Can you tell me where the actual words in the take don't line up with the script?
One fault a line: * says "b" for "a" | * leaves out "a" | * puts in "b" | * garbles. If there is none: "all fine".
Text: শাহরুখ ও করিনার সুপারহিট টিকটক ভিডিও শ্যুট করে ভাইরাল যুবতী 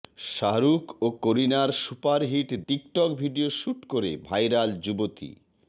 all fine